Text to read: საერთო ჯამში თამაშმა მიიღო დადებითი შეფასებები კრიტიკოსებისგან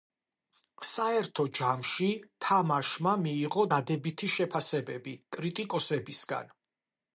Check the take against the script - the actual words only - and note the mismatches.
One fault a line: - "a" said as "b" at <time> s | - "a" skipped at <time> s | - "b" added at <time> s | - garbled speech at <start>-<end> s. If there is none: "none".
none